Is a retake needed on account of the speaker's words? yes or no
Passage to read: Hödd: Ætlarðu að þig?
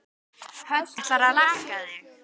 no